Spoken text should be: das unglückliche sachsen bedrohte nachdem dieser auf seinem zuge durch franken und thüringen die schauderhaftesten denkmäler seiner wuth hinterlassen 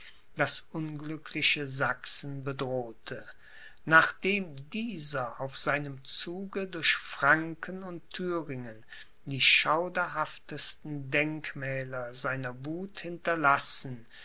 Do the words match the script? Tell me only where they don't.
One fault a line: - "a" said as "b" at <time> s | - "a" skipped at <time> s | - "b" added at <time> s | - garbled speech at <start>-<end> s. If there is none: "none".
none